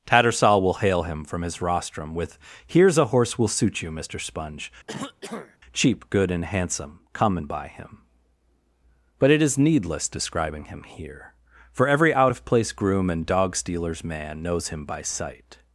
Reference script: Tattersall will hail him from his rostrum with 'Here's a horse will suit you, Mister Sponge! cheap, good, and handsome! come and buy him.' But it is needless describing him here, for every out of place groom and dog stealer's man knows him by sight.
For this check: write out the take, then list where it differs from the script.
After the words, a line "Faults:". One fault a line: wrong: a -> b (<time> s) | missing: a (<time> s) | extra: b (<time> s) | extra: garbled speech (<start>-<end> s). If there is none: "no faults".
Tattersall will hail him from his rostrum with 'Here's a horse will suit you, Mister Sponge! cheap, good, and handsome! come and buy him.' But it is needless describing him here, for every out of place groom and dog stealer's man knows him by sight.
Faults:
no faults